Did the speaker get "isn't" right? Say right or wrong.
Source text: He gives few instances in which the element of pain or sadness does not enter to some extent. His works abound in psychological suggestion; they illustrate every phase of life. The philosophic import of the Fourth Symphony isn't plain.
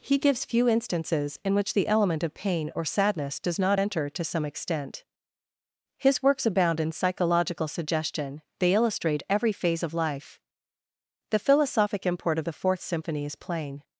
wrong